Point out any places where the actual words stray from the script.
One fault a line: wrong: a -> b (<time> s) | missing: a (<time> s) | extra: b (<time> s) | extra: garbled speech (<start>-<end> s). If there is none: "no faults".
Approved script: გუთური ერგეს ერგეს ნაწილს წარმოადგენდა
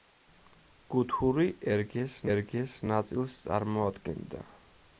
no faults